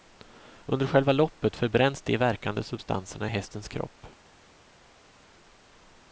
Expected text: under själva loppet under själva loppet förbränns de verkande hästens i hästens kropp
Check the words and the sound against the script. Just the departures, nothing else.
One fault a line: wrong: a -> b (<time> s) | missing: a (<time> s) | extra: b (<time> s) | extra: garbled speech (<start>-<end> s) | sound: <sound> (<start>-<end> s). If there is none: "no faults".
missing: under själva loppet (1.6 s)
wrong: hästens -> substanserna (2.6 s)